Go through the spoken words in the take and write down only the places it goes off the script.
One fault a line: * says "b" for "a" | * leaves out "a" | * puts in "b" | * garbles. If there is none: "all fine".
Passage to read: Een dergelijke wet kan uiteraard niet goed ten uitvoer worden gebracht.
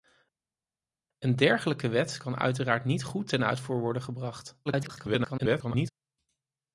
* garbles